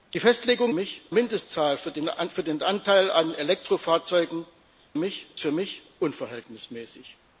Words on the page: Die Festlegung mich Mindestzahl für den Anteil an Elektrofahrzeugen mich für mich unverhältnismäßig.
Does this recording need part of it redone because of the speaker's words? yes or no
no